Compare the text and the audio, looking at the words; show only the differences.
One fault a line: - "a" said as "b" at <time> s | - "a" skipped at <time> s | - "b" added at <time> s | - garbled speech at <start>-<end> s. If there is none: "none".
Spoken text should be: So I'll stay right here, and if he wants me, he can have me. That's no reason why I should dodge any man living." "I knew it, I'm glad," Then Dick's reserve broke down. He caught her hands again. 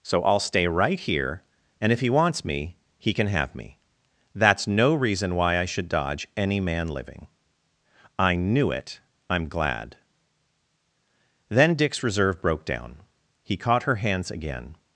none